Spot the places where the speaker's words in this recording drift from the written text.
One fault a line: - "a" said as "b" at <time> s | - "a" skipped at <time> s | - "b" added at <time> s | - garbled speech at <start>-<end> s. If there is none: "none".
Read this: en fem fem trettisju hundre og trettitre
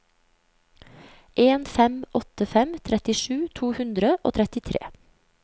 - "åtte" added at 2.2 s
- "to" added at 3.6 s